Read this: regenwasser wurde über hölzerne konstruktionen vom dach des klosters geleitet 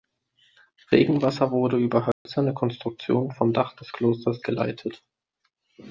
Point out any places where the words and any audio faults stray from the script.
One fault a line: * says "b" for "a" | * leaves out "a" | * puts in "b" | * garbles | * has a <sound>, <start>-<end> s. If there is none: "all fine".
* has a dropout, 2.1-2.3 s